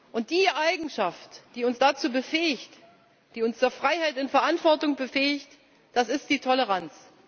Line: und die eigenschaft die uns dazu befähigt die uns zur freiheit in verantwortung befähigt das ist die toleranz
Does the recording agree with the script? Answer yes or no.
yes